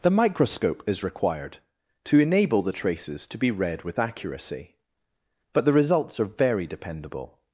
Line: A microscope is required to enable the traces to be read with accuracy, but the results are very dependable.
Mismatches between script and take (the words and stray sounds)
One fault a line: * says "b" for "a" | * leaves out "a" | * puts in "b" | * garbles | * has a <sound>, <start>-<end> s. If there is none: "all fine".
* says "The" for "A"